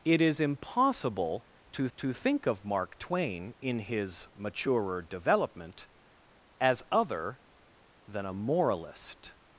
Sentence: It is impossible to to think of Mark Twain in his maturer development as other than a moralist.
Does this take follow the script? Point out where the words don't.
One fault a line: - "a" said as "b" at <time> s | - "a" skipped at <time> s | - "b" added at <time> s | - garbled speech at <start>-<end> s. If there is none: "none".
none